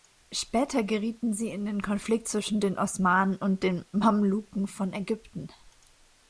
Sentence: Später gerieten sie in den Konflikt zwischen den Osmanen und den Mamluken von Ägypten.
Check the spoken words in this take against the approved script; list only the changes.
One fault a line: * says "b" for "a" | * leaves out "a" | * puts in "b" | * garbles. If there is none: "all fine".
all fine